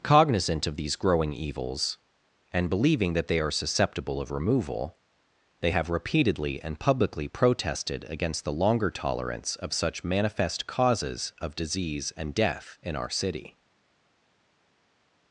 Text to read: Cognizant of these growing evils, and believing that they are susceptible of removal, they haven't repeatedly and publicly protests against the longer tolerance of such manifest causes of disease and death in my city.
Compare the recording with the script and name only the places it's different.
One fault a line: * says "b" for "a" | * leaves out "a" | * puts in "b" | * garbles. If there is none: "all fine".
* says "have" for "haven't"
* says "protested" for "protests"
* says "our" for "my"